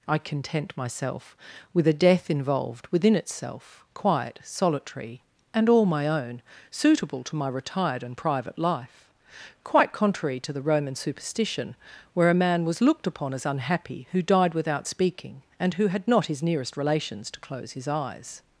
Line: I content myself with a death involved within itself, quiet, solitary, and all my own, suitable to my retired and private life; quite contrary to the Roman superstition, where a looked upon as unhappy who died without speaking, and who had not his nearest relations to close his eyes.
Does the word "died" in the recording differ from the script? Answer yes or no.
no